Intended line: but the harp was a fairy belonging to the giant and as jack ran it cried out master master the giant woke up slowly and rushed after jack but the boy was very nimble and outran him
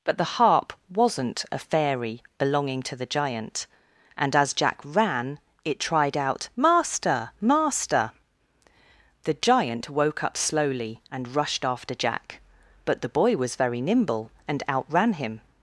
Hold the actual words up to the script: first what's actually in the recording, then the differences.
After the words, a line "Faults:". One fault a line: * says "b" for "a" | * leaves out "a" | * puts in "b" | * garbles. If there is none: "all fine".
but the harp wasn't a fairy belonging to the giant and as jack ran it tried out master master the giant woke up slowly and rushed after jack but the boy was very nimble and outran him
Faults:
* says "wasn't" for "was"
* says "tried" for "cried"